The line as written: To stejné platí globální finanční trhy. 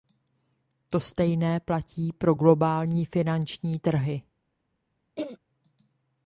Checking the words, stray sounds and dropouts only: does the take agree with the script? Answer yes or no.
no